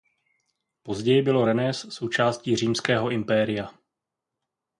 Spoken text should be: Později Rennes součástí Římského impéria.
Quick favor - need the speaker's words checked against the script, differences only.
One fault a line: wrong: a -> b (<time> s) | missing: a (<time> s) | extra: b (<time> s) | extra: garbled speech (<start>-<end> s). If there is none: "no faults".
extra: bylo (1.2 s)